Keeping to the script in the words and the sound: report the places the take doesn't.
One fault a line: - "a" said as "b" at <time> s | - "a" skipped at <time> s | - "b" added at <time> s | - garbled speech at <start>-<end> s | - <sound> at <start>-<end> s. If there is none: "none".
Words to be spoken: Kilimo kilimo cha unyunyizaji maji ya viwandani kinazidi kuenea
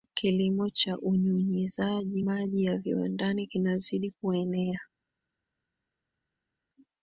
- "kilimo" skipped at 0.7 s